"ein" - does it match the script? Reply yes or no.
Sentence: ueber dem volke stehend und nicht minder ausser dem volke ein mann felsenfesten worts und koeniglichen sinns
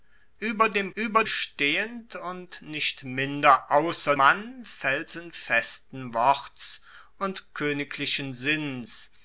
no